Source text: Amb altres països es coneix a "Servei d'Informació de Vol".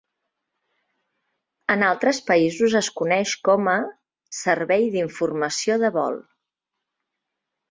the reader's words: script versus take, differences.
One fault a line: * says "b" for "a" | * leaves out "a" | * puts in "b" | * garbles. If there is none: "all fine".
* says "En" for "Amb"
* puts in "com"